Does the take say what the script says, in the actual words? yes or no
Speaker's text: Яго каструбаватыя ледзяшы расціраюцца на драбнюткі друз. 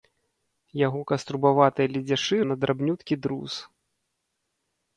no